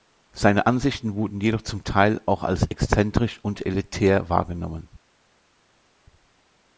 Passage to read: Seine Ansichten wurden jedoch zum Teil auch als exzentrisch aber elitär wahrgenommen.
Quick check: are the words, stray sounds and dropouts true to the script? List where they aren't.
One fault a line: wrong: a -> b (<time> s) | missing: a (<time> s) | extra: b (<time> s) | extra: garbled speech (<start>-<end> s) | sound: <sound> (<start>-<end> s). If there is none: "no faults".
wrong: aber -> und (3.4 s)